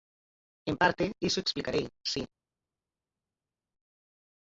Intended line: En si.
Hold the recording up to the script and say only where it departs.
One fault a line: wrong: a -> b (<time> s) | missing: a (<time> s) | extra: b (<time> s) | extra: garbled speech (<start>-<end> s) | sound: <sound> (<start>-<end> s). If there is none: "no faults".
extra: parte iso explicarei (0.8 s)